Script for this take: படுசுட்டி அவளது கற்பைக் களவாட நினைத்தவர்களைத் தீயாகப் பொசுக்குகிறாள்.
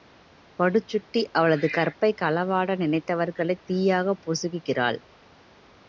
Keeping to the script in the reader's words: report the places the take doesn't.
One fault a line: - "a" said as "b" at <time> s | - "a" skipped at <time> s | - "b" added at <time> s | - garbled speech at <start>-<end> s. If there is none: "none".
none